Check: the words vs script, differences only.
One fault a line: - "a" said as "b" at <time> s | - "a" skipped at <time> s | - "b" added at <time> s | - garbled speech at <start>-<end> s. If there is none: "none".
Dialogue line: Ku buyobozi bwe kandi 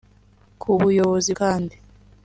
- "bwe" skipped at 1.3 s